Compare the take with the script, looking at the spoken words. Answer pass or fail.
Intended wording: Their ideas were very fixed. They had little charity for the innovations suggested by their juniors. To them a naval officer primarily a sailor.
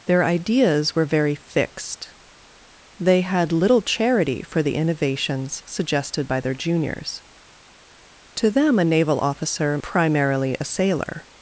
pass